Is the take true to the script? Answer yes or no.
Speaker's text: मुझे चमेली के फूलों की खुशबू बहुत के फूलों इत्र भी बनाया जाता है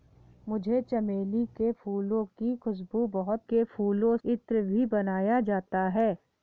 yes